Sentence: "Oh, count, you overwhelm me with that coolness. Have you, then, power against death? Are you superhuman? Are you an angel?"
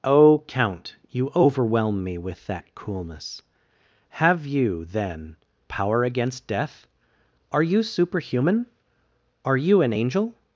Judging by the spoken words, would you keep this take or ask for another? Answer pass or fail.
pass